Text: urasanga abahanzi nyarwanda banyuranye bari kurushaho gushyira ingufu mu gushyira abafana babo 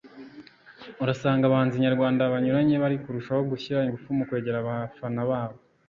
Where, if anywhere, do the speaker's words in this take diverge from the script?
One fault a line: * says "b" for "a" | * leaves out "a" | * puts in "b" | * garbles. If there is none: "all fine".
* says "kwegera" for "gushyira"